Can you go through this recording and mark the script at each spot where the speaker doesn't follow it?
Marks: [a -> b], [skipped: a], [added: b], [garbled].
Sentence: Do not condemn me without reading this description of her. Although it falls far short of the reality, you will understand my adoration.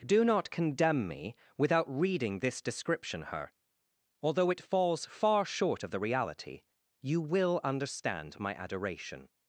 Do not condemn me without reading this description [skipped: of] her. Although it falls far short of the reality, you will understand my adoration.